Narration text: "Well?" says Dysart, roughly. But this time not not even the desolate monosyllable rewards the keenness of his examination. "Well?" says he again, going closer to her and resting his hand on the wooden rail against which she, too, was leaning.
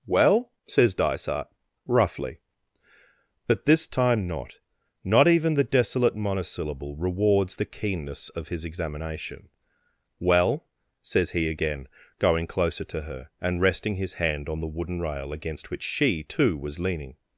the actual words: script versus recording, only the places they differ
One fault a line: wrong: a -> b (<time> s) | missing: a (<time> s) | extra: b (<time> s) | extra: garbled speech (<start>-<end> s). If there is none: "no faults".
no faults